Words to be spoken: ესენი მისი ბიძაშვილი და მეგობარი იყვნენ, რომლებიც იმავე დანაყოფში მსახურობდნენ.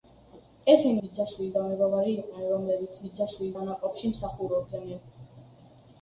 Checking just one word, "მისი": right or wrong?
wrong